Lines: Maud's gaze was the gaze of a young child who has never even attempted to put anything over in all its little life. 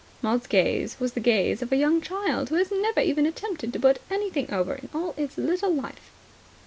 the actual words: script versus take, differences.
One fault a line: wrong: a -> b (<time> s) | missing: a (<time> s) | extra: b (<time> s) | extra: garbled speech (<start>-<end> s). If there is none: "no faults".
no faults